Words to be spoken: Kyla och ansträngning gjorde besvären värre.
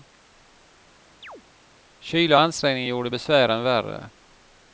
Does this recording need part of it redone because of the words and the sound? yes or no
yes